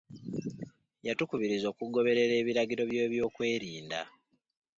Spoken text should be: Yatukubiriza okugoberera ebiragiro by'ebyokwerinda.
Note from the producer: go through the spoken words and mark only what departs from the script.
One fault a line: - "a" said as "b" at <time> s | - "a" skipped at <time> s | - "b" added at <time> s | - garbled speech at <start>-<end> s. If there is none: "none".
none